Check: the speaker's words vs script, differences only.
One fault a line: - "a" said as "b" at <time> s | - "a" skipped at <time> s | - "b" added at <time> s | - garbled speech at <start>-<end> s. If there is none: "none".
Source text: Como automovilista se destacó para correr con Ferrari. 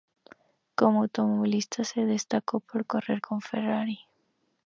- "para" said as "por" at 2.6 s